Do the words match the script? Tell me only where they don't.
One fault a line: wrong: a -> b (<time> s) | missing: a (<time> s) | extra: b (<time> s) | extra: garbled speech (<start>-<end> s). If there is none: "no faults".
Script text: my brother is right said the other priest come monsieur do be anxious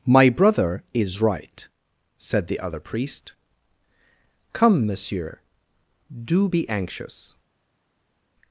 no faults